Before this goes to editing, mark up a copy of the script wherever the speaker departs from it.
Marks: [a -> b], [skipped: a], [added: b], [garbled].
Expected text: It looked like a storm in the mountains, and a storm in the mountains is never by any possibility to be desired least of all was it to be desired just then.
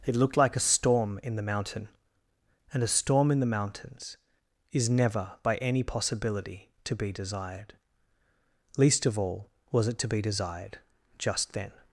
It looked like a storm in the [mountains, -> mountain] and a storm in the mountains is never by any possibility to be desired least of all was it to be desired just then.